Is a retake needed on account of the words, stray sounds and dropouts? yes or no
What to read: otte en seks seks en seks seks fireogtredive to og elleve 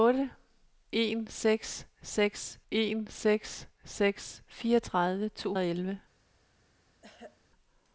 yes